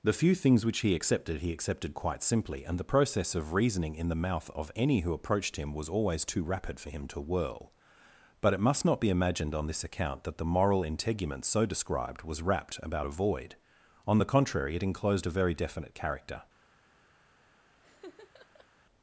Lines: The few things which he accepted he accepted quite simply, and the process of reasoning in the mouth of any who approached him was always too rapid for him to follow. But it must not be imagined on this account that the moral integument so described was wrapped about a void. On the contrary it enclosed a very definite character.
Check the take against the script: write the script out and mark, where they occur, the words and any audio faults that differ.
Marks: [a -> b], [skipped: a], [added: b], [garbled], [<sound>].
The few things which he accepted he accepted quite simply, and the process of reasoning in the mouth of any who approached him was always too rapid for him to [follow. -> whirl] But it must not be imagined on this account that the moral integument so described was wrapped about a void. On the contrary it enclosed a very definite character. [laugh]